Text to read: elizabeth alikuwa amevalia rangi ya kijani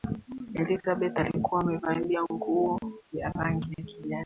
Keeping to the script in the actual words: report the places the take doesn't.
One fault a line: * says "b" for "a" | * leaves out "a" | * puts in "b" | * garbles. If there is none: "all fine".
* puts in "nguo ya"